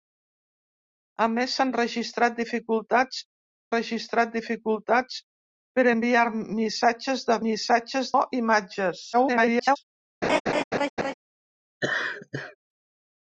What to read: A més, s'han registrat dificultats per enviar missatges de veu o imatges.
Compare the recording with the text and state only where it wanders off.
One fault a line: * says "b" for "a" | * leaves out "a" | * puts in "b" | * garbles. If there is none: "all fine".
* puts in "registrat dificultats"
* says "missatges" for "veu"
* garbles